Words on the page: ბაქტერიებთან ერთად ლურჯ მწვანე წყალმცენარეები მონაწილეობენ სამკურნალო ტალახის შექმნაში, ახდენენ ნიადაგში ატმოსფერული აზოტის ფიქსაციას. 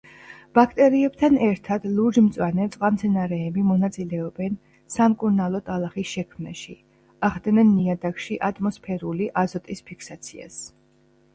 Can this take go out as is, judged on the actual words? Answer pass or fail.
pass